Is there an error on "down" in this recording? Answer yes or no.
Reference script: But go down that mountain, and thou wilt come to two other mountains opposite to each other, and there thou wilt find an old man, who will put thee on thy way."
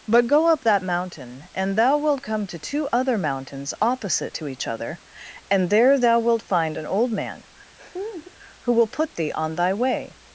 yes